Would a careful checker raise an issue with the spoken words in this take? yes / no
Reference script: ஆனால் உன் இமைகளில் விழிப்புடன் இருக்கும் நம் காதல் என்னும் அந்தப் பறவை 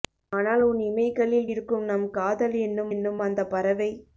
yes